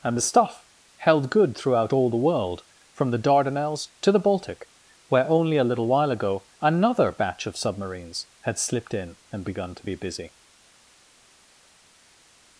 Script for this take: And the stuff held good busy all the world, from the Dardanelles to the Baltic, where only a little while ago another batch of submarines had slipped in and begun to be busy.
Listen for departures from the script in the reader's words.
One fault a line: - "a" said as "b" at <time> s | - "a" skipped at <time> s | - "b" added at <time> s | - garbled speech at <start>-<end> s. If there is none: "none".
- "busy" said as "throughout" at 1.6 s